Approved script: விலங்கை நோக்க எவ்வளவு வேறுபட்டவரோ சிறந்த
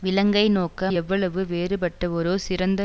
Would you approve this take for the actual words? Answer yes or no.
yes